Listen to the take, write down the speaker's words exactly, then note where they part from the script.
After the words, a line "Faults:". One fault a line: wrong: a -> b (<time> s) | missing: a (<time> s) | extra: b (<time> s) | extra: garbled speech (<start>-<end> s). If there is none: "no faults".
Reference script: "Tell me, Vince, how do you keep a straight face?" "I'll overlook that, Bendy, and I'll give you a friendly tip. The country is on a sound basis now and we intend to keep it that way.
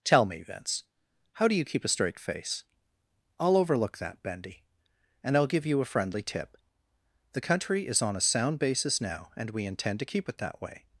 "Tell me, Vince, how do you keep a straight face?" "I'll overlook that, Bendy, and I'll give you a friendly tip. The country is on a sound basis now and we intend to keep it that way.
Faults:
no faults